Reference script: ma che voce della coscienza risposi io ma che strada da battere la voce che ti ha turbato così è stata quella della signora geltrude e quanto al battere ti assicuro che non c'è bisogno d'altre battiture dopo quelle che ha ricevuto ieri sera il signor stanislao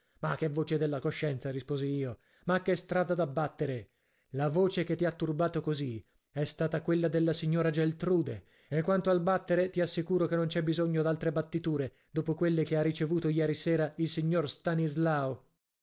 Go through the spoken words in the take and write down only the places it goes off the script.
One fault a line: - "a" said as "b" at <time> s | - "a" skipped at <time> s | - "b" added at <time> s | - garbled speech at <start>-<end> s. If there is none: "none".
none